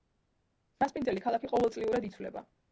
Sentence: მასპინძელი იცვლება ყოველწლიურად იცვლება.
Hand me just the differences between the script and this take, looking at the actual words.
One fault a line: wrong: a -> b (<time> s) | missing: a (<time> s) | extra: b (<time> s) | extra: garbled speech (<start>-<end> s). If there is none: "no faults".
wrong: იცვლება -> ქალაქი (1.3 s)